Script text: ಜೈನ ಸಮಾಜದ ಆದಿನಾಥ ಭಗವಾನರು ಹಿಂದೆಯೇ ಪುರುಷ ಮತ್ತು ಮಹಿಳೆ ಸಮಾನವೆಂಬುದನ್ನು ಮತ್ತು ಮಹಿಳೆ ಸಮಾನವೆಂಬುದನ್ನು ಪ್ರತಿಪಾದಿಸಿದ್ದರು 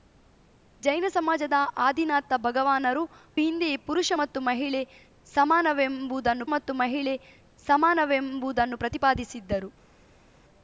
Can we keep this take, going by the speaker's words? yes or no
yes